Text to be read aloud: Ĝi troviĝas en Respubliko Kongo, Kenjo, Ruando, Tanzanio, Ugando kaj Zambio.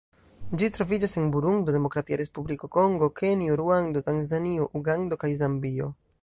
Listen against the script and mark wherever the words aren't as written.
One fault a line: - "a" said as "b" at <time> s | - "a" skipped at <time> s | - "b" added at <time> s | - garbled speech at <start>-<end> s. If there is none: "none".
- "Burundo Demokratia" added at 1.4 s